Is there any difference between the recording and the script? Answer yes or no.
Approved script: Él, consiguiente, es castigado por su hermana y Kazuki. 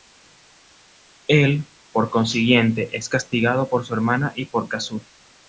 yes